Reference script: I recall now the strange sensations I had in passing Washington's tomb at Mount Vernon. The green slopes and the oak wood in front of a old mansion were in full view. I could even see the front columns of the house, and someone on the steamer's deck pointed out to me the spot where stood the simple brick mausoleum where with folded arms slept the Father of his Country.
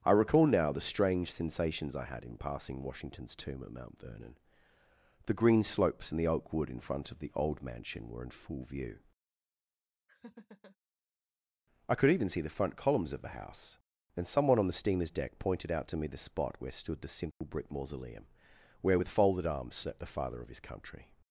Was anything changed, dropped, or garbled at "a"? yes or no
yes